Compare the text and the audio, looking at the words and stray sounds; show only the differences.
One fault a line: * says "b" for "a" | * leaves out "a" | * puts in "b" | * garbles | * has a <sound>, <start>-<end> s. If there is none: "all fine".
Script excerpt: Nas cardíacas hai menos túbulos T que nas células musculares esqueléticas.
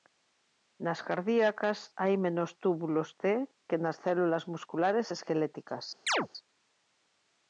* has a chirp, 6.1-6.3 s